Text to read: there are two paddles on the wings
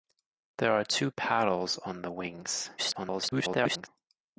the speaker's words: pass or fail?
fail